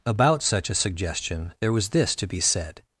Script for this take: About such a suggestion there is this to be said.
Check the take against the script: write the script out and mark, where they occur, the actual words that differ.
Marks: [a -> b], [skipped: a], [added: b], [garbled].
About such a suggestion there [is -> was] this to be said.